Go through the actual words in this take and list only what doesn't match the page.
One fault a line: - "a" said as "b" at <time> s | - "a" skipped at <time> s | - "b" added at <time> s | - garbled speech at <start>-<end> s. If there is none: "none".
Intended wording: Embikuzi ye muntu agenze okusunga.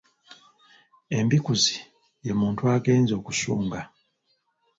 none